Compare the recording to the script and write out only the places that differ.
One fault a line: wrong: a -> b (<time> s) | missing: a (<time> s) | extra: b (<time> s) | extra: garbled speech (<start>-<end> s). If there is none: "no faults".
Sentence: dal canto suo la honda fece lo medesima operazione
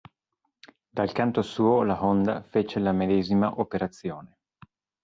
wrong: lo -> la (2.8 s)